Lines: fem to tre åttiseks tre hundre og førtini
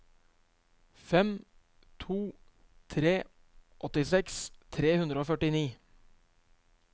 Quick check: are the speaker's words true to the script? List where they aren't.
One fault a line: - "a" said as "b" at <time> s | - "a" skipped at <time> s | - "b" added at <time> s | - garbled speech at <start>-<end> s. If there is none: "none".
none